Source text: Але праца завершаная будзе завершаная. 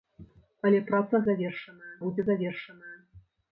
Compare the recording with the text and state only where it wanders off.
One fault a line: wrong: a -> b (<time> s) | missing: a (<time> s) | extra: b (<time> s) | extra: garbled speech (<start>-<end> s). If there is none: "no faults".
no faults